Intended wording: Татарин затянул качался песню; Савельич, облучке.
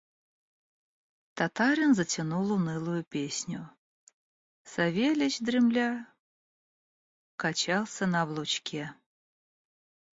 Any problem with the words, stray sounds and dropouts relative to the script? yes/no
yes